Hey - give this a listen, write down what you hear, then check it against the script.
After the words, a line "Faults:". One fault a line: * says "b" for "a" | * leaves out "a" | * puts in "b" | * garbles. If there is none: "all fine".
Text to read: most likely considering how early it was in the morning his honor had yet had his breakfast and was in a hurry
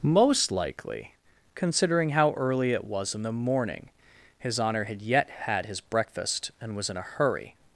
most likely considering how early it was in the morning his honor had yet had his breakfast and was in a hurry
Faults:
all fine